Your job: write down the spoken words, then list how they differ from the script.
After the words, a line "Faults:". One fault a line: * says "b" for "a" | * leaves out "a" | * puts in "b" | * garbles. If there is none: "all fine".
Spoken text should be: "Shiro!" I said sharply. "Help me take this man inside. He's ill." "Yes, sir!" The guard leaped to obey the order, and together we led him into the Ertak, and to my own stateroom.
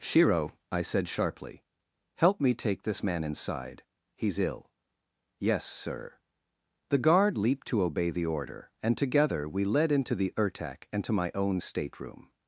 "Shiro!" I said sharply. "Help me take this man inside. He's ill." "Yes, sir!" The guard leaped to obey the order, and together we led into the Ertak, and to my own stateroom.
Faults:
* leaves out "him"